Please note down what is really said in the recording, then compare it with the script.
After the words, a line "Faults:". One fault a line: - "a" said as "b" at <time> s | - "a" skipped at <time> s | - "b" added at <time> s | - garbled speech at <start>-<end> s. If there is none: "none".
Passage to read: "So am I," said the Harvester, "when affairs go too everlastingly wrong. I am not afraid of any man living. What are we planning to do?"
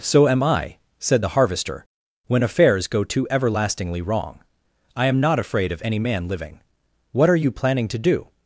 "So am I," said the Harvester, "when affairs go too everlastingly wrong. I am not afraid of any man living. What are you planning to do?"
Faults:
- "we" said as "you" at 7.3 s